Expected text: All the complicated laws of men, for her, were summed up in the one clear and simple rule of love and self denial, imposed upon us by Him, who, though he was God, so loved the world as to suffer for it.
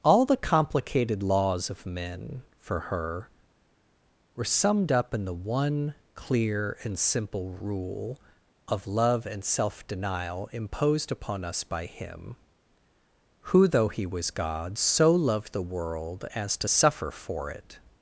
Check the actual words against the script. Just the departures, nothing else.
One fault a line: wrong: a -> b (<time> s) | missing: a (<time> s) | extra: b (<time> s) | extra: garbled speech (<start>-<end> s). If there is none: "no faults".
no faults